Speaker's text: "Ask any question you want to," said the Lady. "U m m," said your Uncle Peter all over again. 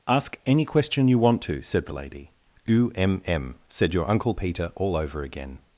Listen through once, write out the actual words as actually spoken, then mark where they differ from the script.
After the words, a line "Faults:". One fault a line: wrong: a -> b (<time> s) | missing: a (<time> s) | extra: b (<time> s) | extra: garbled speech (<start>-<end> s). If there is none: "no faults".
"Ask any question you want to," said the Lady. "U m m," said your Uncle Peter all over again.
Faults:
no faults